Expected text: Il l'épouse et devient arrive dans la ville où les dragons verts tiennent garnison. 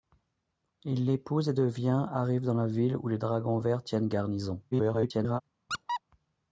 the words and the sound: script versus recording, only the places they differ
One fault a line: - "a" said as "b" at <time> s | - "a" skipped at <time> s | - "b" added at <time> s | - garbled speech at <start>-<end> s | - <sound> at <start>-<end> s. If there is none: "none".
- garbled speech at 4.7-5.4 s
- squeak at 5.7-6.0 s